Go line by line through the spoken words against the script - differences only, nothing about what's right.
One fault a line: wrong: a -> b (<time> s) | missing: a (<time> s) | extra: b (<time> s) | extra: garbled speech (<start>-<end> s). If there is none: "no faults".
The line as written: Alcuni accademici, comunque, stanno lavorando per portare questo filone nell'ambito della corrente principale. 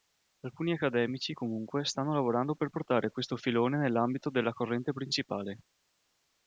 no faults